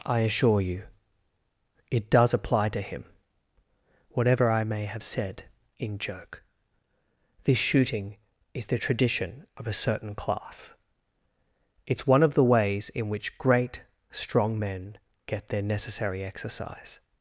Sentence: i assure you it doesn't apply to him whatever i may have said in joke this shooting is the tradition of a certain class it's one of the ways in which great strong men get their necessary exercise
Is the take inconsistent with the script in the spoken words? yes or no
yes